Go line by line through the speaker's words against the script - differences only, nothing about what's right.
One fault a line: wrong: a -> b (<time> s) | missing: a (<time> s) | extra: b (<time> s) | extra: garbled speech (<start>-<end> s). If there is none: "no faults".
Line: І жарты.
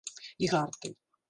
no faults